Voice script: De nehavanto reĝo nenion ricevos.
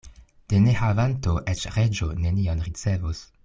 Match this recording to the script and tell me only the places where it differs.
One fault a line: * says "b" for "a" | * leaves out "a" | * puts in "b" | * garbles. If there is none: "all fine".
* puts in "eĉ"